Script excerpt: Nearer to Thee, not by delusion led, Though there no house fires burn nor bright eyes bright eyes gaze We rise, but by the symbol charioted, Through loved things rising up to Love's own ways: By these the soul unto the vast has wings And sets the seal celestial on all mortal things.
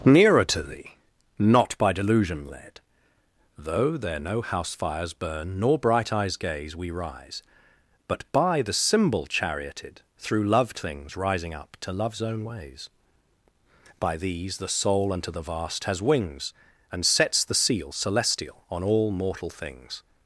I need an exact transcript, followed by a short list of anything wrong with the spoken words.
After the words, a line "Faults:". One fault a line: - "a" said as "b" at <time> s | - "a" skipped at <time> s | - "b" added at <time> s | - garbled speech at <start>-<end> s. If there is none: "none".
Nearer to Thee, not by delusion led, Though there no house fires burn nor bright eyes gaze We rise, but by the symbol charioted, Through loved things rising up to Love's own ways: By these the soul unto the vast has wings And sets the seal celestial on all mortal things.
Faults:
- "bright eyes" skipped at 6.4 s